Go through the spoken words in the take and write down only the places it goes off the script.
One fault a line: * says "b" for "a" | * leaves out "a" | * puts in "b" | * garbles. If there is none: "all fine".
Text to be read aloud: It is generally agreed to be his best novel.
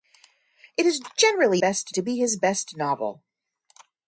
* says "best" for "agreed"